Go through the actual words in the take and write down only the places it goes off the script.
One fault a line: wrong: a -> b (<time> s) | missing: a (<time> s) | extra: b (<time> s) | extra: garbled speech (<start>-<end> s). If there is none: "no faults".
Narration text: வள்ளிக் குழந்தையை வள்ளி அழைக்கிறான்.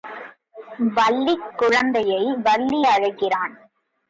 no faults